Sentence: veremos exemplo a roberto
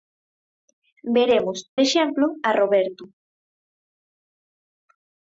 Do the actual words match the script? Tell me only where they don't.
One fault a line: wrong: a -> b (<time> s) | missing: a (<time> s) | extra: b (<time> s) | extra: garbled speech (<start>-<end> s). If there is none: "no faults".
no faults